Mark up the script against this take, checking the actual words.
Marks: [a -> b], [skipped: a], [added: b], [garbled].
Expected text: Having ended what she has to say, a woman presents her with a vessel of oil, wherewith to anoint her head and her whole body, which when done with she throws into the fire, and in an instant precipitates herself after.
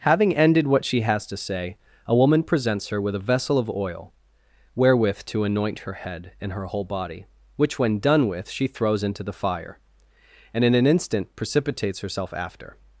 Having ended what she has to say, a woman presents her with a vessel of oil, wherewith to anoint her head and her whole body, which when done with she throws into the fire, and in an instant precipitates herself after.